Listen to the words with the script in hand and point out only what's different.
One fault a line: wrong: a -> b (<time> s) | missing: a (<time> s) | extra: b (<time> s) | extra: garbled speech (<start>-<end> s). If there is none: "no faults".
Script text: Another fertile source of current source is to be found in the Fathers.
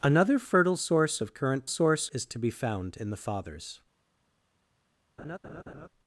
no faults